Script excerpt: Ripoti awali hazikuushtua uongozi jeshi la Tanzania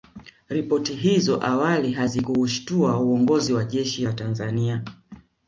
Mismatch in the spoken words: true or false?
true